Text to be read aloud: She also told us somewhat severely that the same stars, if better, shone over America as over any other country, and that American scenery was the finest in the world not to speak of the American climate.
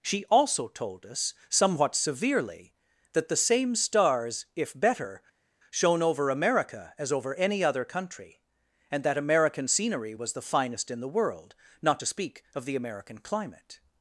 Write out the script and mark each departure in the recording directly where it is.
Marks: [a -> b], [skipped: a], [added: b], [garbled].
She also told us somewhat severely that the same stars, if better, shone over America as over any other country, and that American scenery was the finest in the world not to speak of the American climate.